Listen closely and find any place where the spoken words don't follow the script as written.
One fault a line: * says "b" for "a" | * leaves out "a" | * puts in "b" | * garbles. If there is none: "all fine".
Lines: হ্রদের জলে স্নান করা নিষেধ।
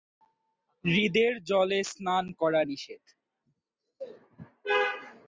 all fine